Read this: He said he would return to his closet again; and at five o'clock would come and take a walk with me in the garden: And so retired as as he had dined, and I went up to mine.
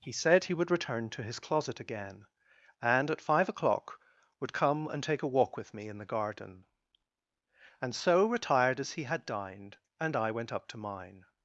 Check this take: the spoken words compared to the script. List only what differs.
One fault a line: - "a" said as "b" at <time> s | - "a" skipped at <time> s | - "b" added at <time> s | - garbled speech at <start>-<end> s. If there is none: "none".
none